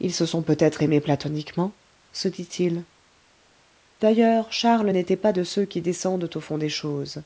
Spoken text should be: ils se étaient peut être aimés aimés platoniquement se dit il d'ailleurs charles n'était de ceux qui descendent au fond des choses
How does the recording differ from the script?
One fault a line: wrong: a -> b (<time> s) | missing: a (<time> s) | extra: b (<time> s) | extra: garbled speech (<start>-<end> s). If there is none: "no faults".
wrong: étaient -> sont (0.2 s)
missing: aimés (1.0 s)
extra: pas (5.2 s)